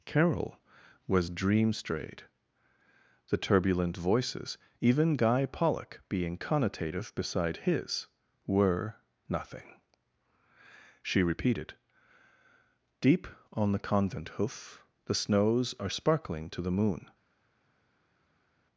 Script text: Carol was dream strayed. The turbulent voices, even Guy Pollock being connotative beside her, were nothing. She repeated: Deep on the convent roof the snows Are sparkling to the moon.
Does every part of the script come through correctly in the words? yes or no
no